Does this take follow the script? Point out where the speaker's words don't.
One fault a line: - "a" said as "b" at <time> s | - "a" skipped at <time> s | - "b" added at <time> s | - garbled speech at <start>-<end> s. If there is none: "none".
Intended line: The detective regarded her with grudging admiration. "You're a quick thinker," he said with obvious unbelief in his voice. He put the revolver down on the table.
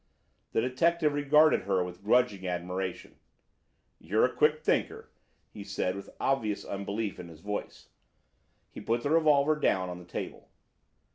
none